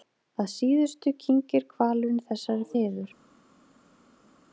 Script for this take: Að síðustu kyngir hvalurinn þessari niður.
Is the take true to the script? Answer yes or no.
yes